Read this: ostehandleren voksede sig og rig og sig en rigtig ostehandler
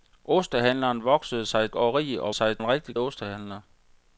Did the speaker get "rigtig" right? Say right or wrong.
right